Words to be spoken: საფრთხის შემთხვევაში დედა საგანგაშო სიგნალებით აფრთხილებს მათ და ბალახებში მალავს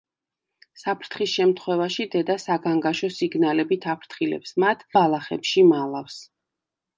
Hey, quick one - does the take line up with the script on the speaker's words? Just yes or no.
no